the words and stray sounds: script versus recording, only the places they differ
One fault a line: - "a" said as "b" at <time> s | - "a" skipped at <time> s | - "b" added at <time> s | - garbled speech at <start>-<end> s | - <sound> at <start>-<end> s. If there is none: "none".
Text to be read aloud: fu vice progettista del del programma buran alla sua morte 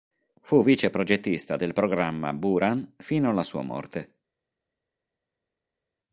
- "del" skipped at 1.7 s
- "fino" added at 3.0 s